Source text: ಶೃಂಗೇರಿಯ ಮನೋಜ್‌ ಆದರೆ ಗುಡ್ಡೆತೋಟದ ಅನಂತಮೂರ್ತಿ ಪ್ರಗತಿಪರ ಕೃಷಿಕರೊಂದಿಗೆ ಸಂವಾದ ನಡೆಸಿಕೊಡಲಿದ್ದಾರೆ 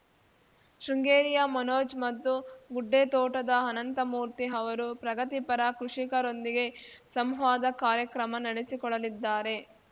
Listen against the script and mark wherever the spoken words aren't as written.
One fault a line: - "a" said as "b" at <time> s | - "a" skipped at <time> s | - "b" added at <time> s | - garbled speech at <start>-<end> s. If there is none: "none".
- "ಆದರೆ" said as "ಮತ್ತು" at 2.0 s
- "ಅವರು" added at 4.5 s
- "ಕಾರ್ಯಕ್ರಮ" added at 7.8 s